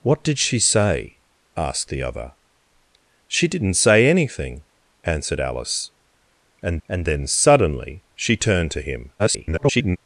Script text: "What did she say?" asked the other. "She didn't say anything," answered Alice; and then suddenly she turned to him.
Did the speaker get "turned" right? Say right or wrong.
right